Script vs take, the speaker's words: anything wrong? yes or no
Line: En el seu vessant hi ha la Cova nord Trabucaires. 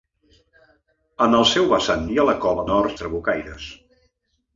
no